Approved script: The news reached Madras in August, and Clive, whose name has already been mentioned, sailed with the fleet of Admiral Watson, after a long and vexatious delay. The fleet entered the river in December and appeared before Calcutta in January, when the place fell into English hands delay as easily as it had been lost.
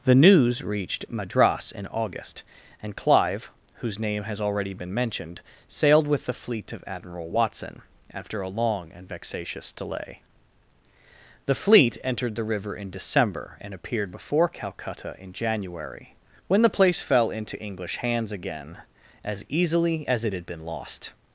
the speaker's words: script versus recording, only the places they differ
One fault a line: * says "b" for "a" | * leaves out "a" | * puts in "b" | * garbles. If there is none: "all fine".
* says "again" for "delay"